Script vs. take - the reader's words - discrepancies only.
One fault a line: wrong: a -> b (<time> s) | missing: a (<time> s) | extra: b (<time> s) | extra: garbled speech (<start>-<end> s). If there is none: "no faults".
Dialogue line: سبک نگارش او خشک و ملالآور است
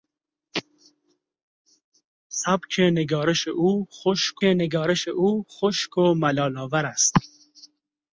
extra: نگارش او خشک (4.4 s)